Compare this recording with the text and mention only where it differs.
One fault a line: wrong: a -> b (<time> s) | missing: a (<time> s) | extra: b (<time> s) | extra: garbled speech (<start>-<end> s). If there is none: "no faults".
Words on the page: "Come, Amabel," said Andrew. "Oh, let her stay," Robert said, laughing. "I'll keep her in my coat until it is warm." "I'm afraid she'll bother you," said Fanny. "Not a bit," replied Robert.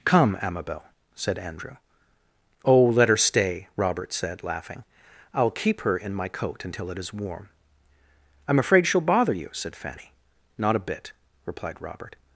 no faults